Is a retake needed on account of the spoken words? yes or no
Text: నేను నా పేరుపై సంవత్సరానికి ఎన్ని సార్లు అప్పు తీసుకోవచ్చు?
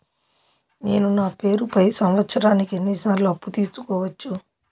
no